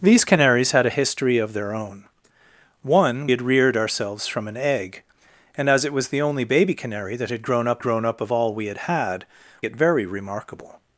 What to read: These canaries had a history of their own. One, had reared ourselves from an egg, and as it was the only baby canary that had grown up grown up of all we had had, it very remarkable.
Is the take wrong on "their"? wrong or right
right